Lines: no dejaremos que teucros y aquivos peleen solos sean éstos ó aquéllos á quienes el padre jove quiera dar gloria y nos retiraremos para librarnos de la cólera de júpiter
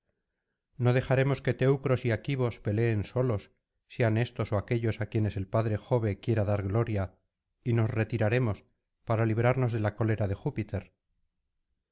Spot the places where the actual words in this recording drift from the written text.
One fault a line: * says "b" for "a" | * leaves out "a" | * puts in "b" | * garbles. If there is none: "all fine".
all fine